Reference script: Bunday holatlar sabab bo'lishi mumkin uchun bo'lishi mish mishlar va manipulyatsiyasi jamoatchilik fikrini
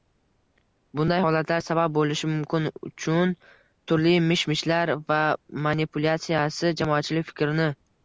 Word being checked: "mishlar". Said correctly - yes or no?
yes